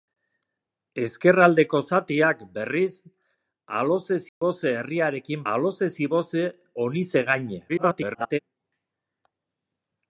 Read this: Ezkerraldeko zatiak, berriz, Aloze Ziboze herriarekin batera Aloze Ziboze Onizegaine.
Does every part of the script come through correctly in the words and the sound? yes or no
no